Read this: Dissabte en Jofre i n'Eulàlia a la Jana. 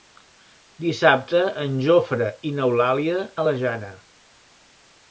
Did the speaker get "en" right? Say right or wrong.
right